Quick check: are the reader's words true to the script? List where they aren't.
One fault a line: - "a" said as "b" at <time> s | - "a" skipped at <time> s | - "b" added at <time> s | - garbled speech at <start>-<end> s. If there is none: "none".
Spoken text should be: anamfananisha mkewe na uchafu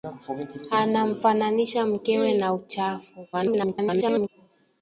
- garbled speech at 3.3-4.3 s